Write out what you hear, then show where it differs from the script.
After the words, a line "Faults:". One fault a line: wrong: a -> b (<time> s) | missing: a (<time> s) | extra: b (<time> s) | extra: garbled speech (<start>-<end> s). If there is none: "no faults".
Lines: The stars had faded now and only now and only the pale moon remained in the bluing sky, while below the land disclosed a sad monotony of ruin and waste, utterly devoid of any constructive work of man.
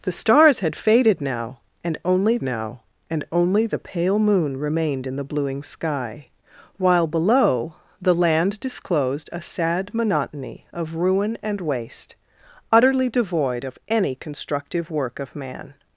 The stars had faded now and only now and only the pale moon remained in the bluing sky, while below the land disclosed a sad monotony of ruin and waste, utterly devoid of any constructive work of man.
Faults:
no faults